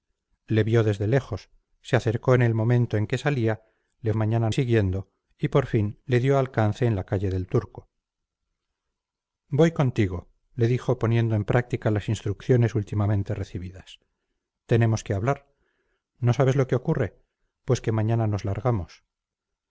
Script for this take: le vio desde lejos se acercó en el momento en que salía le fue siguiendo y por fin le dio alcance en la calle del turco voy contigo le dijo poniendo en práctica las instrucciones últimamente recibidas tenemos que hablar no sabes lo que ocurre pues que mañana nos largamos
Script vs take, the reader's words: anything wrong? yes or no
yes